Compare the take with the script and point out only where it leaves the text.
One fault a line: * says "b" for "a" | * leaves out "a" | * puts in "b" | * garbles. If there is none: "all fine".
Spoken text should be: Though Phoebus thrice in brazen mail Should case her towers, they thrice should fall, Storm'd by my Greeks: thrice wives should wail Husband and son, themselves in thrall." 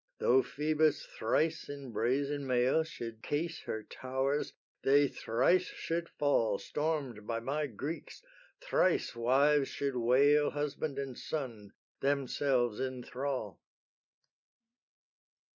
all fine